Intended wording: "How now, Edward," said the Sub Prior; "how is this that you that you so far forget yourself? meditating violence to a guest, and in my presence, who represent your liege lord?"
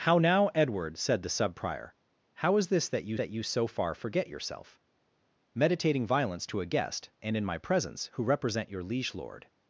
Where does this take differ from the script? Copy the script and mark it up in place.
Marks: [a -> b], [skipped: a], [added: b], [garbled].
"How now, Edward," said the Sub Prior; "how is this that you that you so far forget yourself? meditating violence to a guest, and in my presence, who represent your liege lord?"